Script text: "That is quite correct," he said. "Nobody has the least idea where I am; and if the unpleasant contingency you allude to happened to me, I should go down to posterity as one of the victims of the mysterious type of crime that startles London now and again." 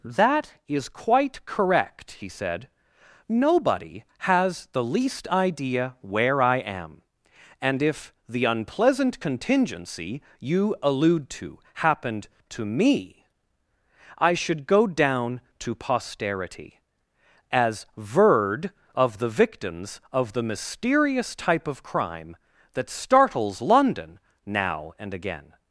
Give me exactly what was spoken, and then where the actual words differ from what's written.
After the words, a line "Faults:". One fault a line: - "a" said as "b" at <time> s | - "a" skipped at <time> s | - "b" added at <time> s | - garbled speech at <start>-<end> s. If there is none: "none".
"That is quite correct," he said. "Nobody has the least idea where I am; and if the unpleasant contingency you allude to happened to me, I should go down to posterity as verd of the victims of the mysterious type of crime that startles London now and again."
Faults:
- "one" said as "verd" at 18.0 s